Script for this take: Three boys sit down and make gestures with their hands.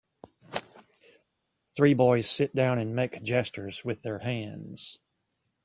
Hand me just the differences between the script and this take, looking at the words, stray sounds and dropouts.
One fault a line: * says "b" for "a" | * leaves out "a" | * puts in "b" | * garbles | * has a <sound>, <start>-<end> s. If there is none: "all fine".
all fine